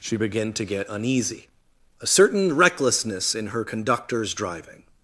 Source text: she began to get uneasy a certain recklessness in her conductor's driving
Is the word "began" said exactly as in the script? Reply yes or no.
yes